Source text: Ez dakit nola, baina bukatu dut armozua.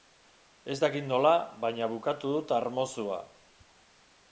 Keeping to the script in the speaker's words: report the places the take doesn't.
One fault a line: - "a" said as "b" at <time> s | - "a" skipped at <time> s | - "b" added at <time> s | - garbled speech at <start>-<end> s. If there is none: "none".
none